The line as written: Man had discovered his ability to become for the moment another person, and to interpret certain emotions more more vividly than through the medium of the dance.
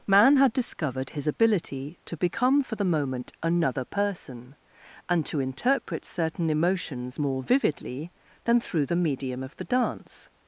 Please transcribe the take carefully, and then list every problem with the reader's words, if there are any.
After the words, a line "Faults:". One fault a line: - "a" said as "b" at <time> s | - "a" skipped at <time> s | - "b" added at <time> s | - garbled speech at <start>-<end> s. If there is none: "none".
Man had discovered his ability to become for the moment another person, and to interpret certain emotions more vividly than through the medium of the dance.
Faults:
- "more" skipped at 7.4 s